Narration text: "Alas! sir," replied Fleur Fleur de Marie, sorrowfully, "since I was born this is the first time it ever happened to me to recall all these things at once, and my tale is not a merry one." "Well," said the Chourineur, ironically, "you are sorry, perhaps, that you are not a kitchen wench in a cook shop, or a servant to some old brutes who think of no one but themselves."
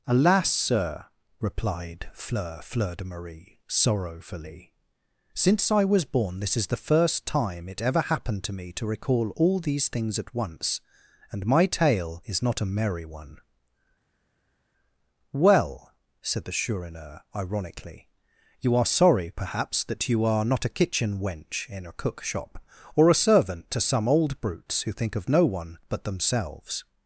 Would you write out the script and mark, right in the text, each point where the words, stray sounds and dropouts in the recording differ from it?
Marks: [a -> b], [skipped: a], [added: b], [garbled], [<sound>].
"Alas! sir," replied Fleur Fleur de Marie, sorrowfully, "since I was born this is the first time it ever happened to me to recall all these things at once, and my tale is not a merry one." "Well," said the Chourineur, ironically, "you are sorry, perhaps, that you are not a kitchen wench in a cook shop, or a servant to some old brutes who think of no one but themselves."